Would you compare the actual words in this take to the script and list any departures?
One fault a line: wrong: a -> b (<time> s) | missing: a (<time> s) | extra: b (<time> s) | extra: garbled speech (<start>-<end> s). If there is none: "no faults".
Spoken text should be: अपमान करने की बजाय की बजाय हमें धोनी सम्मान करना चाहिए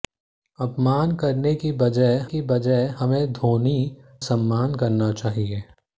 no faults